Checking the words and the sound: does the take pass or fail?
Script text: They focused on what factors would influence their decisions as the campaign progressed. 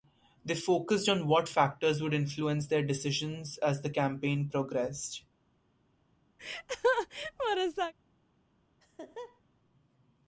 fail